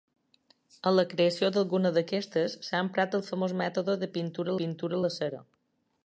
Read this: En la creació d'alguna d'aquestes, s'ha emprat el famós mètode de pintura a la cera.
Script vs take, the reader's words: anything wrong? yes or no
yes